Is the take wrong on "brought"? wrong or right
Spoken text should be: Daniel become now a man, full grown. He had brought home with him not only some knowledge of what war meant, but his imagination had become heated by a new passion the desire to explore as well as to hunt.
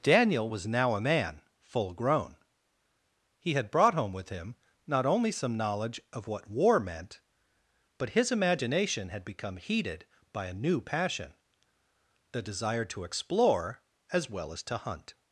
right